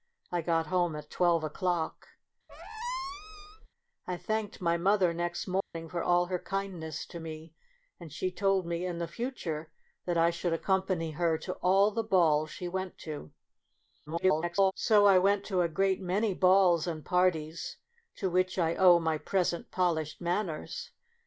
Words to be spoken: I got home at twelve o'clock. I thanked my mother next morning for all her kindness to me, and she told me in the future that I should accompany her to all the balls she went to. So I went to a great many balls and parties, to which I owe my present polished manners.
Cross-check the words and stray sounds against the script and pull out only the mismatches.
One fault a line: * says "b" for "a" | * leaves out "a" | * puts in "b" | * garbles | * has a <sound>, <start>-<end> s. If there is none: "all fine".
* has a squeak, 2.5-3.7 s
* has a dropout, 5.6-5.7 s
* garbles